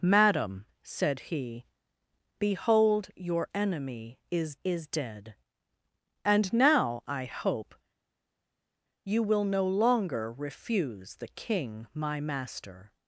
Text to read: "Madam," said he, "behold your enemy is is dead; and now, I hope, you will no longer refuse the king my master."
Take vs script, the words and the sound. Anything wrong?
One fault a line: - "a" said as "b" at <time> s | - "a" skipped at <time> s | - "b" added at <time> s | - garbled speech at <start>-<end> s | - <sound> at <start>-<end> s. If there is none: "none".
none